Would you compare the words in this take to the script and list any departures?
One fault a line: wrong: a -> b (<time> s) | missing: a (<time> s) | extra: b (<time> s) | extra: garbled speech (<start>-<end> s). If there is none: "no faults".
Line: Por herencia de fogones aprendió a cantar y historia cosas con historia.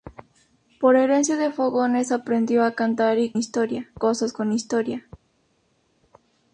no faults